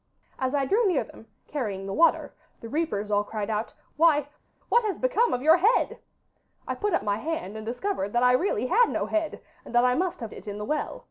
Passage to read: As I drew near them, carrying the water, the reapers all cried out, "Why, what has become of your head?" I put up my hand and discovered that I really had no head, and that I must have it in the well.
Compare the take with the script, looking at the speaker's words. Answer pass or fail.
pass